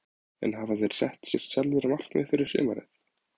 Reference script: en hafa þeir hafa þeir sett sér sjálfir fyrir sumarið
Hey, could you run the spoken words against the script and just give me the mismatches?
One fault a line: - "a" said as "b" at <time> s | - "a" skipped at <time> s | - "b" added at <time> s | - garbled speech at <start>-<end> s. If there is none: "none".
- "hafa þeir" skipped at 0.9 s
- "markmið" added at 1.9 s